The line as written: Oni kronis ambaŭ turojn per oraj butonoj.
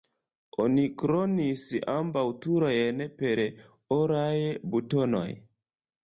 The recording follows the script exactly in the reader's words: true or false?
true